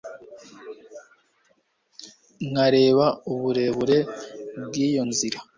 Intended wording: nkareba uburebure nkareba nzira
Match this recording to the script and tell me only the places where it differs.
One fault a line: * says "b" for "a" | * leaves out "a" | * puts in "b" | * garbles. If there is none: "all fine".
* says "bw'iyo" for "nkareba"